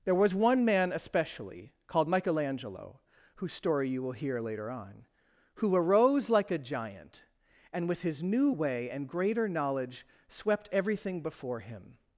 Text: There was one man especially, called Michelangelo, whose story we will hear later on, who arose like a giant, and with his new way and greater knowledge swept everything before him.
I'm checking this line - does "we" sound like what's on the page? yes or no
no